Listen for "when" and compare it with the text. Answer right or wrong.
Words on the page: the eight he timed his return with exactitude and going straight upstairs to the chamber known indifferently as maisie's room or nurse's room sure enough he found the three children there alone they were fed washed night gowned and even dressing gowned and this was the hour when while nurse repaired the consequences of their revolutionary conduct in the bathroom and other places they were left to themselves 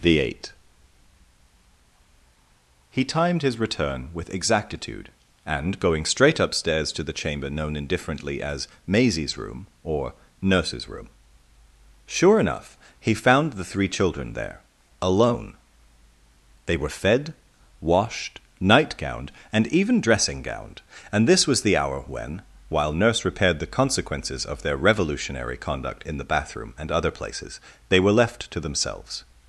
right